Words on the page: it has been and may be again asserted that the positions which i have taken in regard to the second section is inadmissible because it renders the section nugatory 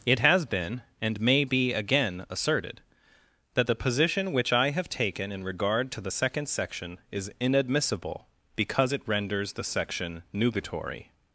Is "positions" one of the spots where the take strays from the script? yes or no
yes